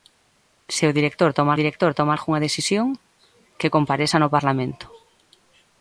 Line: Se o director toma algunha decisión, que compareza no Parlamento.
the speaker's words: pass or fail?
fail